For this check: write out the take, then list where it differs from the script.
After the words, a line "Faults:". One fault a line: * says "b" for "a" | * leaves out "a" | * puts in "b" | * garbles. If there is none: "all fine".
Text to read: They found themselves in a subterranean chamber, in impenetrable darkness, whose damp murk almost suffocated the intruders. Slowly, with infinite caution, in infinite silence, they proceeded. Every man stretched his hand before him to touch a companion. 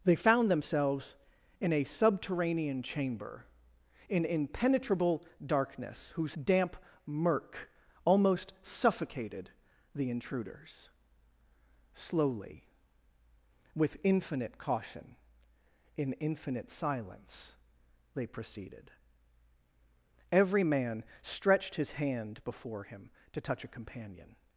They found themselves in a subterranean chamber, in impenetrable darkness, whose damp murk almost suffocated the intruders. Slowly, with infinite caution, in infinite silence, they proceeded. Every man stretched his hand before him to touch a companion.
Faults:
all fine